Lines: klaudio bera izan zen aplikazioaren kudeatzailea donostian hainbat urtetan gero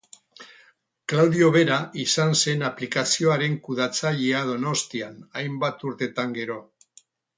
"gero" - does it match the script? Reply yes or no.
yes